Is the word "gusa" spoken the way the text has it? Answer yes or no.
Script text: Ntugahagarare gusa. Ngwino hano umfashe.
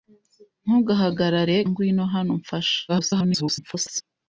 no